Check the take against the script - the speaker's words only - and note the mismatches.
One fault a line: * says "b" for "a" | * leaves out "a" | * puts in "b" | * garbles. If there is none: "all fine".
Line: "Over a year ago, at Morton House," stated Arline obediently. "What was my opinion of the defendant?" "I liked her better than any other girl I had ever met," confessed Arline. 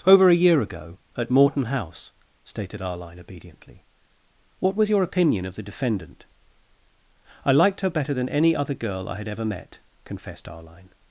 * says "your" for "my"